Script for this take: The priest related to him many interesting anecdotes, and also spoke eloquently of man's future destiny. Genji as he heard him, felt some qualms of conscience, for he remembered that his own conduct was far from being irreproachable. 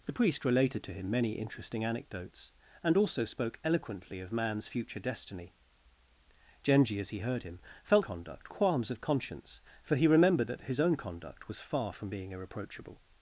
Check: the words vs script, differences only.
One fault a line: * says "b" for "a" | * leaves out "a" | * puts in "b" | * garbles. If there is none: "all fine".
* says "conduct" for "some"